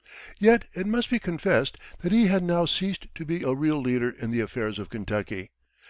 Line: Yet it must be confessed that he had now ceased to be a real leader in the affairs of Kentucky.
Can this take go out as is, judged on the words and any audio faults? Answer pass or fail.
pass